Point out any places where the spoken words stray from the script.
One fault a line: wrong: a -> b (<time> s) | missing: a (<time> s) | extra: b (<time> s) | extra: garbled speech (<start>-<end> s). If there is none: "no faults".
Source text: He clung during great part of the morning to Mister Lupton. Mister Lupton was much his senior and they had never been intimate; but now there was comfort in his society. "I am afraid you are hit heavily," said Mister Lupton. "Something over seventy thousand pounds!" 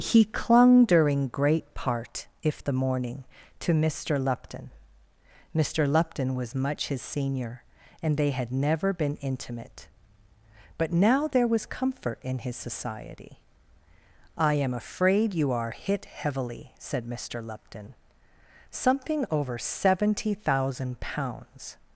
wrong: of -> if (2.4 s)